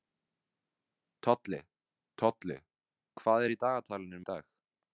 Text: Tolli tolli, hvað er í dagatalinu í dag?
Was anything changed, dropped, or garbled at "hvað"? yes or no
no